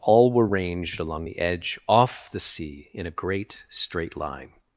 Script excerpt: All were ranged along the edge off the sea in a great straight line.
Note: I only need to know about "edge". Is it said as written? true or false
true